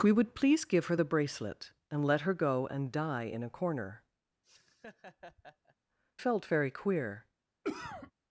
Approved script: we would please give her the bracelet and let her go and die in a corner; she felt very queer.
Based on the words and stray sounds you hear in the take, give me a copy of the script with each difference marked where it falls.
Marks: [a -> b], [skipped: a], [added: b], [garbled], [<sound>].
we would please give her the bracelet and let her go and die in a corner; [skipped: she] [laugh] felt very queer. [cough]